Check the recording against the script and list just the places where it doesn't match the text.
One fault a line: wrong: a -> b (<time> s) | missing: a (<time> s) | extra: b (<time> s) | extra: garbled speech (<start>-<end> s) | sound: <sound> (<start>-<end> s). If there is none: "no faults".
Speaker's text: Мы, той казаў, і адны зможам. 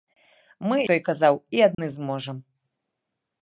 sound: dropout (1.7-1.8 s)